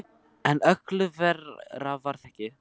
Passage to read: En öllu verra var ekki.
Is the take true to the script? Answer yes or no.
yes